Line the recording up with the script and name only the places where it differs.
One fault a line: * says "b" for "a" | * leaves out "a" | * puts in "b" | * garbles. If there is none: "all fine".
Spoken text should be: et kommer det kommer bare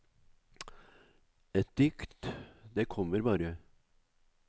* says "dikt" for "kommer"